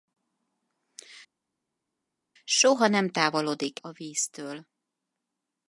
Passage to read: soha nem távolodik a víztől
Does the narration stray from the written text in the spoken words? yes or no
no